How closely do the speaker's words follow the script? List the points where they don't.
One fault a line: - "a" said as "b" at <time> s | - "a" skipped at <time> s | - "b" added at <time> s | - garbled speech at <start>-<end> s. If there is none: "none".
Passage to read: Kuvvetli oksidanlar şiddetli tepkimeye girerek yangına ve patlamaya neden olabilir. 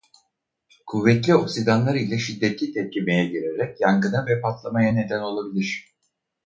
- "ile" added at 1.9 s